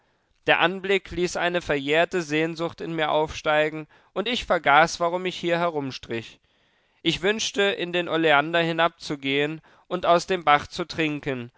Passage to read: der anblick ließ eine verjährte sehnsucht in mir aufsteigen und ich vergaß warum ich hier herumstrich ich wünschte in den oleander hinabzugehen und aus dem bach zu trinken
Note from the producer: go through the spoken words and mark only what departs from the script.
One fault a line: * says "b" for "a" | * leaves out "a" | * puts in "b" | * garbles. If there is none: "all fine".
all fine